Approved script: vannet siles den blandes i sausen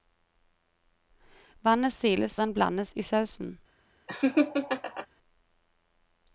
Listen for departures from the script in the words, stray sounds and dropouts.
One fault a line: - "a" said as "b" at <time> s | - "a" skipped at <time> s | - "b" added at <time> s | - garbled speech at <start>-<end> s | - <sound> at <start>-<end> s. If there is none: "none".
- laugh at 4.1-5.1 s